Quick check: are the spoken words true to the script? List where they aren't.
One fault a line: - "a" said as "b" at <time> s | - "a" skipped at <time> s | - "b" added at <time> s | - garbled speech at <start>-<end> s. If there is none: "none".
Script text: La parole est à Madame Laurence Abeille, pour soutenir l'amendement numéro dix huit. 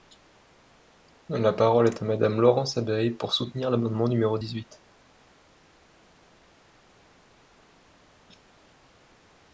none